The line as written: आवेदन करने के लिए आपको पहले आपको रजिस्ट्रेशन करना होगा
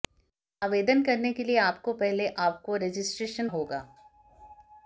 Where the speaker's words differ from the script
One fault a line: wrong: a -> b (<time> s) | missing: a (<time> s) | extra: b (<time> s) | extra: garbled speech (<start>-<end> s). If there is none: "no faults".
missing: करना (3.5 s)